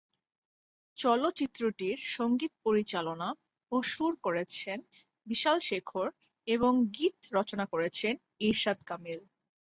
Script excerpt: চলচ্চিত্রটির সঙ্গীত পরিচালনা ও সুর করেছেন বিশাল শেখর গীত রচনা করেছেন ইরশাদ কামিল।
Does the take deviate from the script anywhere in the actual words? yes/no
yes